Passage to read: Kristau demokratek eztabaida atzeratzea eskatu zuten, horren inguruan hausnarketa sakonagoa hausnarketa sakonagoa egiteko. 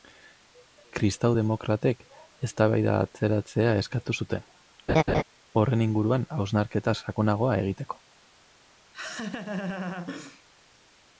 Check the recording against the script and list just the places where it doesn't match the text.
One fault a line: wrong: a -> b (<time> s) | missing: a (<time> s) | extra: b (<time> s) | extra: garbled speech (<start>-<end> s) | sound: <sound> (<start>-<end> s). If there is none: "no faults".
sound: laugh (4.9-5.2 s)
missing: hausnarketa sakonagoa (7.6 s)
sound: laugh (8.9-10.4 s)